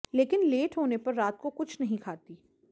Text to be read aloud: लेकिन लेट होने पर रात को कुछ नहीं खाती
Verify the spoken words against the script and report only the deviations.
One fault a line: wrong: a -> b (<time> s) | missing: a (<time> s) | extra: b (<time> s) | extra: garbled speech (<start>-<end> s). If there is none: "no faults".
no faults